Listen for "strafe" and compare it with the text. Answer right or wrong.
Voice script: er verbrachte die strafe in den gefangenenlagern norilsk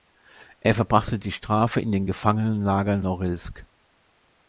right